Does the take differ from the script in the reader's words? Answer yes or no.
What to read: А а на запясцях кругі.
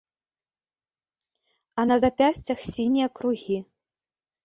yes